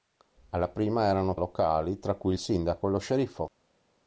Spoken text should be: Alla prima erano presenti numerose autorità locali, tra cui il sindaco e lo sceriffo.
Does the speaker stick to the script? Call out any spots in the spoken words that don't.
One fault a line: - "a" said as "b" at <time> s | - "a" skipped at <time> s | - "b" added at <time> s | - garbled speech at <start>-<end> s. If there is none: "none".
- "presenti numerose autorità" skipped at 1.4 s